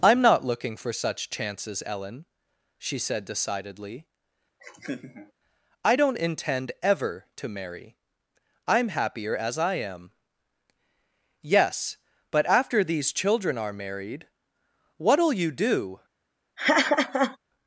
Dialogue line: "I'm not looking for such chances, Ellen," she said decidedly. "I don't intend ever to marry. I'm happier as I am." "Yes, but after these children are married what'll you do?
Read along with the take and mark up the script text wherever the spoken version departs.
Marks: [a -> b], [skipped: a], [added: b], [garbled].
"I'm not looking for such chances, Ellen," she said decidedly. "I don't intend ever to marry. I'm happier as I am." "Yes, but after these children are married what'll you do?